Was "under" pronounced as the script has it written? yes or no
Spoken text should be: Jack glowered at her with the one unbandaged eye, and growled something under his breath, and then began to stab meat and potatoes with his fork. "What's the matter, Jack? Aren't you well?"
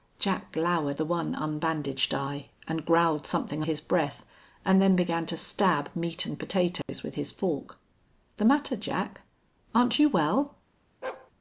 no